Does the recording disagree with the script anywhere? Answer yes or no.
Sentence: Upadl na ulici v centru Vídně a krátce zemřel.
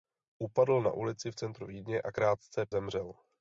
no